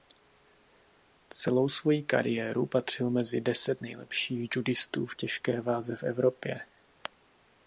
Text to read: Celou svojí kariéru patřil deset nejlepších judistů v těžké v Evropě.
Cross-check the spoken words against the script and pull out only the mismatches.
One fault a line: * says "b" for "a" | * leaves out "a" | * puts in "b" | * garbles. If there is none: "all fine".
* puts in "mezi"
* puts in "váze"